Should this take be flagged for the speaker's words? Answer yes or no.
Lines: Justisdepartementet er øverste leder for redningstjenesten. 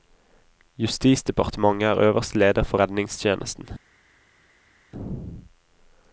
no